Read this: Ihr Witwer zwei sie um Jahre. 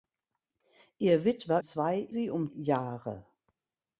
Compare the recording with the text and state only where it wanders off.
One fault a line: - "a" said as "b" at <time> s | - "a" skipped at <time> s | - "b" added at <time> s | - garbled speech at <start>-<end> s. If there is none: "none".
none